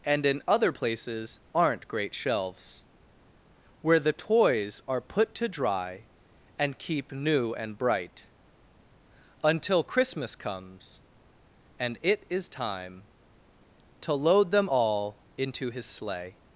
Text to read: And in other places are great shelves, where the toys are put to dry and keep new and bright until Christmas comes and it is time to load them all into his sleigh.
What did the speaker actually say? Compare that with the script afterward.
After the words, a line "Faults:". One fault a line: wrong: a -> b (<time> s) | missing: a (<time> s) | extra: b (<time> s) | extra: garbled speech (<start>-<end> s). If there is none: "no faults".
And in other places aren't great shelves, where the toys are put to dry and keep new and bright until Christmas comes and it is time to load them all into his sleigh.
Faults:
wrong: are -> aren't (1.5 s)